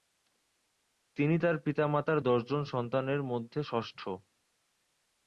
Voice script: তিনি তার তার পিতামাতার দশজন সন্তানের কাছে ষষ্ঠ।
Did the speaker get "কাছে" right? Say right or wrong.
wrong